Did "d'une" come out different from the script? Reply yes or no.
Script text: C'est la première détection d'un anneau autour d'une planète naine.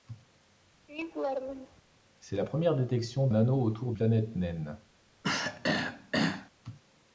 yes